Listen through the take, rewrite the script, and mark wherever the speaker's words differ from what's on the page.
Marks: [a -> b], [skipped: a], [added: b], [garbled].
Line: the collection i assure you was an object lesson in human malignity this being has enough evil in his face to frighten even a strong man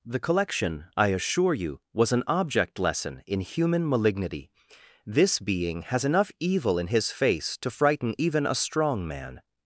the collection i assure you was an object lesson in human malignity this being has enough evil in his face to frighten even a strong man